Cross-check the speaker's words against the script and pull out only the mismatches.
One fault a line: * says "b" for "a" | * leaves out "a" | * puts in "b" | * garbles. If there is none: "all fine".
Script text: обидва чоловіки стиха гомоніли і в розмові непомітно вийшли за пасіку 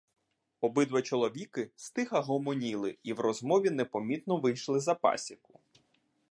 all fine